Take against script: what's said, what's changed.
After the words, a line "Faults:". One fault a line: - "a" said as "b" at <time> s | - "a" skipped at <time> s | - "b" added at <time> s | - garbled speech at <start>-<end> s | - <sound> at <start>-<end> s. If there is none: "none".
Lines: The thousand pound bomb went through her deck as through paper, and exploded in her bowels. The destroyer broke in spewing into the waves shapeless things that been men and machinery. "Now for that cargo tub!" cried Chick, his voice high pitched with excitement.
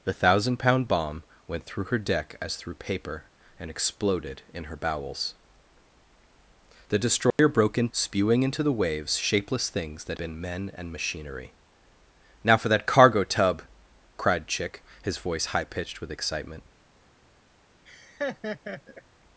The thousand pound bomb went through her deck as through paper, and exploded in her bowels. The destroyer broke in spewing into the waves shapeless things that been men and machinery. "Now for that cargo tub!" cried Chick, his voice high pitched with excitement.
Faults:
- dropout at 7.3-7.4 s
- laugh at 17.9-19.0 s